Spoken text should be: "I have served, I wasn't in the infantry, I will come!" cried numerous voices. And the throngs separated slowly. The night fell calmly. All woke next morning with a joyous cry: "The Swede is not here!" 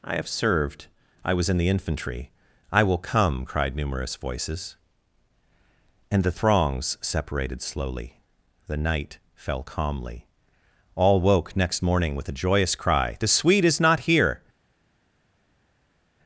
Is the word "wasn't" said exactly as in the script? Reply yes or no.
no